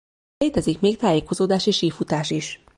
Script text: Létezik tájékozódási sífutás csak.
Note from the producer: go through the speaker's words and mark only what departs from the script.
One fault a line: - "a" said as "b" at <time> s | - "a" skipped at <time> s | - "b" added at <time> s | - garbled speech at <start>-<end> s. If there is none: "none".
- "még" added at 0.8 s
- "csak" said as "is" at 2.3 s